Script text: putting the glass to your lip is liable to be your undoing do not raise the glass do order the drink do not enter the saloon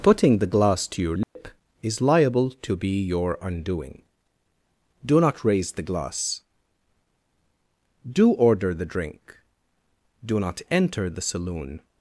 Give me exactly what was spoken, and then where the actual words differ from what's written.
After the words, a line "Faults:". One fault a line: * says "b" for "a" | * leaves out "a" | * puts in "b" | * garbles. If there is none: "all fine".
putting the glass to your lip is liable to be your undoing do not raise the glass do order the drink do not enter the saloon
Faults:
all fine